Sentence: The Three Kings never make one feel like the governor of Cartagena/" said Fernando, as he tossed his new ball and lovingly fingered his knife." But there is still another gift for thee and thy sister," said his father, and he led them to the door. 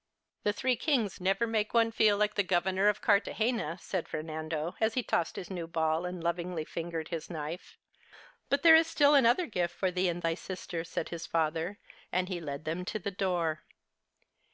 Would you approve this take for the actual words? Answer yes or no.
yes